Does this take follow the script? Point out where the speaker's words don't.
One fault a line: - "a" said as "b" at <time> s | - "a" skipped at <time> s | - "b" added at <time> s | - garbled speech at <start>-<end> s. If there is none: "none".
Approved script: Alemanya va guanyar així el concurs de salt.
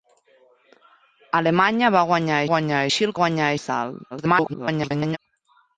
- "guanyar" added at 2.6 s
- "concurs" said as "guanyar" at 3.2 s
- garbled speech at 4.1-5.2 s